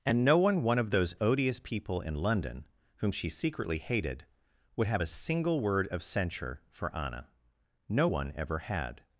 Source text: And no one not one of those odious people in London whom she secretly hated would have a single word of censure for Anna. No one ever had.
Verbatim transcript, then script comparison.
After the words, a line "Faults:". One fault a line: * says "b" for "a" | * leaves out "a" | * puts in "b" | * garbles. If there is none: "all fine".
And no one one of those odious people in London whom she secretly hated would have a single word of censure for Anna. No one ever had.
Faults:
* leaves out "not"